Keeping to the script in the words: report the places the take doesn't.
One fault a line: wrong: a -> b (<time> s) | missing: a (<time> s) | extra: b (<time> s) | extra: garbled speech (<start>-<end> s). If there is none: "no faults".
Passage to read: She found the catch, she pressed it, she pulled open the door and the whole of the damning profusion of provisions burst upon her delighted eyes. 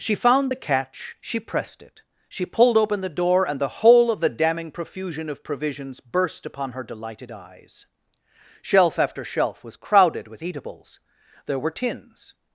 extra: Shelf after shelf was crowded with eatables there were tins (8.6 s)